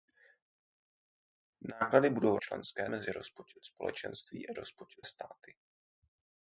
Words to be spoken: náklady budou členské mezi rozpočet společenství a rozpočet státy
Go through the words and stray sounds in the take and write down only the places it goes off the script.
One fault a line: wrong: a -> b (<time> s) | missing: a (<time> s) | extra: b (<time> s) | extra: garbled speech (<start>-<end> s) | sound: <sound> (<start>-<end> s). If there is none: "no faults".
no faults